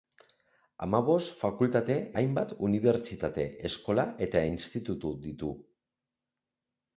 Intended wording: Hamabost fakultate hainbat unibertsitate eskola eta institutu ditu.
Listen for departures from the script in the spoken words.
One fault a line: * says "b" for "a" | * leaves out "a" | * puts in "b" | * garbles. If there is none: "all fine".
all fine